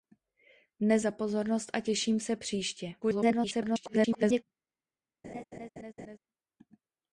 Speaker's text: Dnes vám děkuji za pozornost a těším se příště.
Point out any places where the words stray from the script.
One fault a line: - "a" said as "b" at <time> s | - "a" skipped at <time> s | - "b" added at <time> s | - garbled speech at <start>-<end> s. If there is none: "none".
- "vám děkuji" skipped at 1.1 s
- garbled speech at 3.0-4.4 s